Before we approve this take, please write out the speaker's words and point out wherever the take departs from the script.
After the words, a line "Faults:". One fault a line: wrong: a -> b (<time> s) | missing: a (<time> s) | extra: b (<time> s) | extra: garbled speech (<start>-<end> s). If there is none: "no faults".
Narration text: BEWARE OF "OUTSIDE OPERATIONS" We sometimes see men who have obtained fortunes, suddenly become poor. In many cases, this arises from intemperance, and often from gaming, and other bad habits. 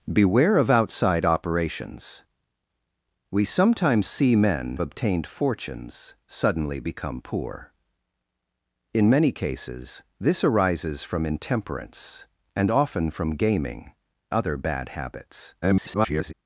BEWARE OF "OUTSIDE OPERATIONS" We sometimes see men obtained fortunes, suddenly become poor. In many cases, this arises from intemperance, and often from gaming, other bad habits. [garbled]
Faults:
missing: who have (4.8 s)
missing: and (13.9 s)
extra: garbled speech (15.6-16.3 s)